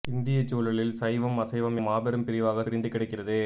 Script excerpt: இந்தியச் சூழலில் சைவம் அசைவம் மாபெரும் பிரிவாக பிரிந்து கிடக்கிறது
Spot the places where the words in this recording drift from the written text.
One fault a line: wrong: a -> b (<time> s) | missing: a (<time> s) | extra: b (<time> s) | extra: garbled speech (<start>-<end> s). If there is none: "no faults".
no faults